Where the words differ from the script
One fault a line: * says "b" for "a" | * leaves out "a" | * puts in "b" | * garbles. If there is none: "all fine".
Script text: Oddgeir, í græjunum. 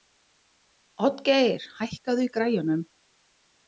* puts in "hækkaðu"